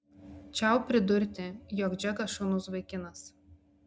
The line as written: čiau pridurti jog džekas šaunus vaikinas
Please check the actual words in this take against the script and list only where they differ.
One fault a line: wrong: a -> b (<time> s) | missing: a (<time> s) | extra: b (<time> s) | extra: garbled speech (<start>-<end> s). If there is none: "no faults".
no faults